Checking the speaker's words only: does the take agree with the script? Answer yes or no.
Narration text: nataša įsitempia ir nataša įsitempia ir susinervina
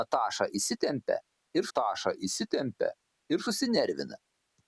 yes